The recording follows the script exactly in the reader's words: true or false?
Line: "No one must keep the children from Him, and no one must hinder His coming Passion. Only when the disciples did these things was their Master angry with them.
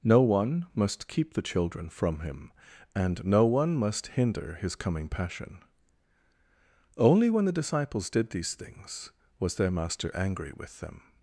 true